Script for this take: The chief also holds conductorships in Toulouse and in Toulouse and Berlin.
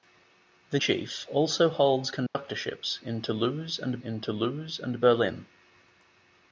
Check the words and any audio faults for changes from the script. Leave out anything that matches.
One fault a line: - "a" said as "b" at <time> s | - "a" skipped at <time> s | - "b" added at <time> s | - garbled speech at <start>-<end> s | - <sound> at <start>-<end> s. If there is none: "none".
- dropout at 2.3-2.4 s